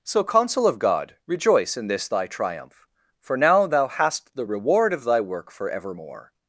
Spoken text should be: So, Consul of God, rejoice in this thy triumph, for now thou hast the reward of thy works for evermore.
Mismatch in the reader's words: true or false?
true